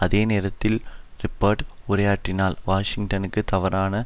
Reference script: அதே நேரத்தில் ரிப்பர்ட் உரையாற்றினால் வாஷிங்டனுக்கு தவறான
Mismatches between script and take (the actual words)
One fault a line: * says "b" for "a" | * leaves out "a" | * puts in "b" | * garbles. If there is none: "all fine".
all fine